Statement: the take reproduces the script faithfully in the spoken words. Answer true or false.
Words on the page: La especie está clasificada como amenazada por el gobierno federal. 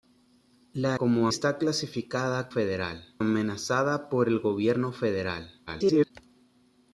false